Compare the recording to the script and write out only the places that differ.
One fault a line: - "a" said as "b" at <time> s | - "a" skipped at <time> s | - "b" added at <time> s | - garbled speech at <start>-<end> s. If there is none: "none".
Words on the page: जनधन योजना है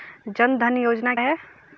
none